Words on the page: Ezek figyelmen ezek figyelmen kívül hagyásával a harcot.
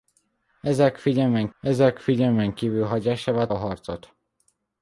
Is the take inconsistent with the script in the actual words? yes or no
no